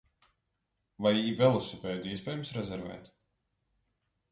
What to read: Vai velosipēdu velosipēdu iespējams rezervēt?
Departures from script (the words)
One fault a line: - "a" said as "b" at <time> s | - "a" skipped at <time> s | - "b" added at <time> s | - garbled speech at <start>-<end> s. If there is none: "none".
- "velosipēdu" skipped at 2.1 s